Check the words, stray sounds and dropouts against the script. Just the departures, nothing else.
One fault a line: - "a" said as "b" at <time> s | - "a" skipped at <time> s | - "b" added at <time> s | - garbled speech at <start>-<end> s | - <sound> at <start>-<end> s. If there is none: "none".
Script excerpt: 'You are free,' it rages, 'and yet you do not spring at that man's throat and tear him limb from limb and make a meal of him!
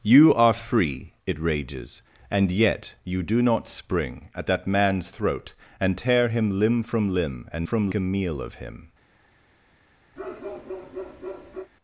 - "make" said as "from" at 7.6 s
- bark at 10.2-11.7 s